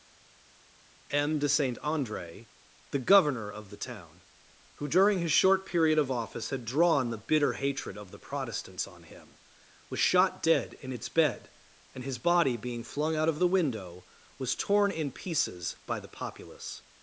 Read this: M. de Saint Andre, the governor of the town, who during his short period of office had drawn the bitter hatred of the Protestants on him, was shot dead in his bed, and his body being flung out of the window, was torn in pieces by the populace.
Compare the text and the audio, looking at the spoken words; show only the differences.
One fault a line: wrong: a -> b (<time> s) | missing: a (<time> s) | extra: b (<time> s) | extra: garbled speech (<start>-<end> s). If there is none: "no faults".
wrong: his -> its (10.9 s)